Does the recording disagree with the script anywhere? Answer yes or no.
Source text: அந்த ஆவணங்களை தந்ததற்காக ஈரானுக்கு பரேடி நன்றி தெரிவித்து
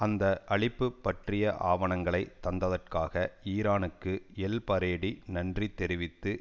yes